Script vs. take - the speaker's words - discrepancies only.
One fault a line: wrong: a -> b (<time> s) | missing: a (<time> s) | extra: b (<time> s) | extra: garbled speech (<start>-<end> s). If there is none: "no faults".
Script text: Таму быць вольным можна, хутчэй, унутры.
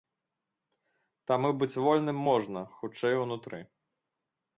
no faults